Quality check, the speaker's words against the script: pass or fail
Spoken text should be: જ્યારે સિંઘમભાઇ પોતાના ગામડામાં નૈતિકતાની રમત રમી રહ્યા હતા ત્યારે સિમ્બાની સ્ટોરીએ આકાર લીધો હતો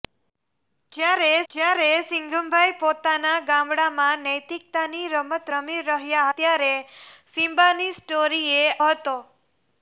fail